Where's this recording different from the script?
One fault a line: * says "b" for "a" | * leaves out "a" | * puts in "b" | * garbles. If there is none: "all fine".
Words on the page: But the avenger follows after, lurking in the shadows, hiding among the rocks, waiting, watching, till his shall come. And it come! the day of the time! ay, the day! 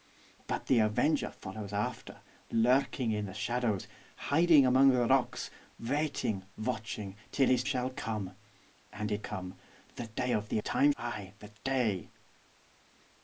all fine